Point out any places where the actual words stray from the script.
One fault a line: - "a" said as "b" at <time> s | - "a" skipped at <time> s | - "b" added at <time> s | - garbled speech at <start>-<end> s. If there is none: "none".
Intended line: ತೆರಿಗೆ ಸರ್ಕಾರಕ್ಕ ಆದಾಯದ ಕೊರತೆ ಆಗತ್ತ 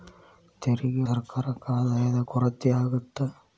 none